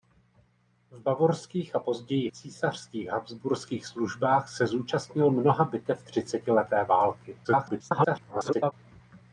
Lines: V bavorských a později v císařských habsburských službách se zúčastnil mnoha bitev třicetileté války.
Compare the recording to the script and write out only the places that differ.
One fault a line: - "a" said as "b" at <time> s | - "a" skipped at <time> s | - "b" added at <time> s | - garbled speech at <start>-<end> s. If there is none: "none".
- "v" skipped at 2.3 s
- garbled speech at 7.4-8.7 s